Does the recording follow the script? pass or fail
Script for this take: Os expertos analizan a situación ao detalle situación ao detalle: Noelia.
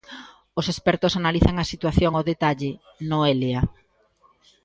fail